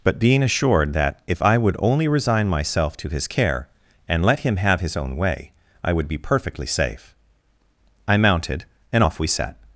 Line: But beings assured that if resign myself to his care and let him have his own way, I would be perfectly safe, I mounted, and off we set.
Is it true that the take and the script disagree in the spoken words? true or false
true